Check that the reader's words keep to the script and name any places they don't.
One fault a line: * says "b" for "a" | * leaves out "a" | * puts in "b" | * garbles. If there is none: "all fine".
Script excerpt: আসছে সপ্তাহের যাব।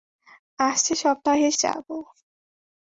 all fine